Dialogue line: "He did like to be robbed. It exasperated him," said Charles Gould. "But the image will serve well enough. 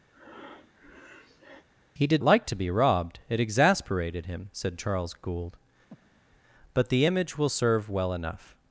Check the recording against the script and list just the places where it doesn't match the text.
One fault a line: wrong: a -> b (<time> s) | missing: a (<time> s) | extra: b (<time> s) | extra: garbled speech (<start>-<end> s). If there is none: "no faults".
no faults